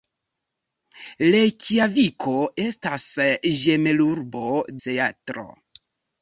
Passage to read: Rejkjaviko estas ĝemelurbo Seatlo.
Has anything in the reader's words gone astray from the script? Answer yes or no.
no